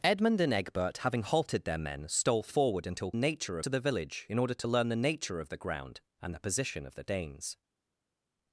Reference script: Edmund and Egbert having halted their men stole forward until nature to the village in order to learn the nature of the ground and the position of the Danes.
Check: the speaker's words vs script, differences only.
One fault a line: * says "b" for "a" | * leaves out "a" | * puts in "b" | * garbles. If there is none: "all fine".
all fine